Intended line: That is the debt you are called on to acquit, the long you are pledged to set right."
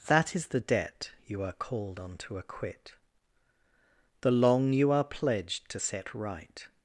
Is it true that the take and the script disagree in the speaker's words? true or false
false